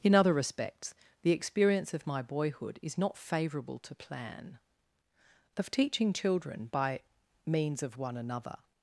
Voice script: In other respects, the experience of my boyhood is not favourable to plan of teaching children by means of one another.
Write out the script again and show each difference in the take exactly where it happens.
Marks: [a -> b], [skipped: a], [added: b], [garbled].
In other respects, the experience of my boyhood is not favourable to plan of teaching children by means of one another.